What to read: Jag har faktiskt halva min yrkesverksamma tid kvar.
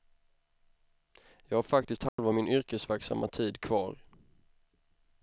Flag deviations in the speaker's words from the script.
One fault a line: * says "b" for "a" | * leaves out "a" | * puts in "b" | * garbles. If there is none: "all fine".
all fine